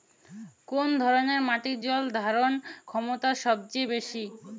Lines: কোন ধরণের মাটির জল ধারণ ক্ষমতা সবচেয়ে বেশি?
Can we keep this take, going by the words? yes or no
yes